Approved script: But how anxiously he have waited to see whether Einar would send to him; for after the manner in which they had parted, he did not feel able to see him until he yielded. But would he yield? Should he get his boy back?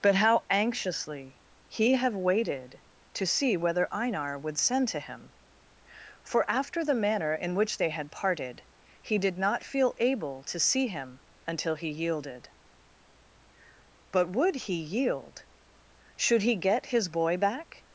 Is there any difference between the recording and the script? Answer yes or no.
no